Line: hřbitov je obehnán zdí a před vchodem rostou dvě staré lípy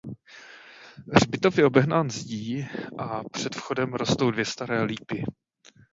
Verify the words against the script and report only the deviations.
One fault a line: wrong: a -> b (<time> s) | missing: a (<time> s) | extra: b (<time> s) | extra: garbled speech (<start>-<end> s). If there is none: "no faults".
no faults